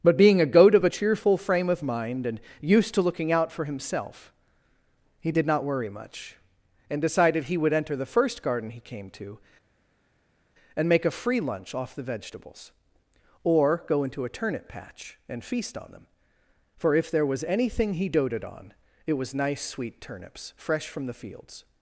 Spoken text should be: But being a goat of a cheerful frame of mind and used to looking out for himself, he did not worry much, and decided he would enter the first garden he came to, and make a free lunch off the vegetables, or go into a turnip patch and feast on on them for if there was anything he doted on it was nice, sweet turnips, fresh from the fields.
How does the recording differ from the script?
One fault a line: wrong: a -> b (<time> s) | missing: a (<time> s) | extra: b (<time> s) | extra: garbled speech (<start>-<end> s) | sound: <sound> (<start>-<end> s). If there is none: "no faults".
missing: on (15.9 s)